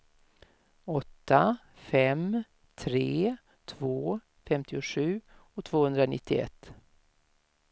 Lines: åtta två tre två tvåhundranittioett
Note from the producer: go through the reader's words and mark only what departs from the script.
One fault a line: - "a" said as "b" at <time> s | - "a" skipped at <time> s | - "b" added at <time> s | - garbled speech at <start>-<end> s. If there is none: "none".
- "två" said as "fem" at 1.8 s
- "femtiosju" added at 4.5 s